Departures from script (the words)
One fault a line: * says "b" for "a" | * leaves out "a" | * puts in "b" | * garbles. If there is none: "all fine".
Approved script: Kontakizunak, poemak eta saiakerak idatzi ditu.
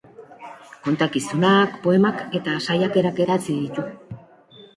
all fine